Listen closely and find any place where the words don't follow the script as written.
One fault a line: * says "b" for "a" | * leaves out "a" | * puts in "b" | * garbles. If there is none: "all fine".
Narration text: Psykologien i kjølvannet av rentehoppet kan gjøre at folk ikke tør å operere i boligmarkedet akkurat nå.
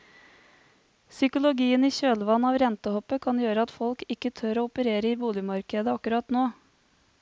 all fine